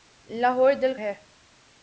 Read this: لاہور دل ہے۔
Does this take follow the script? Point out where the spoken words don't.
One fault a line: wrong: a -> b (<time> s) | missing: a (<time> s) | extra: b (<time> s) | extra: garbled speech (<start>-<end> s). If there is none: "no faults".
no faults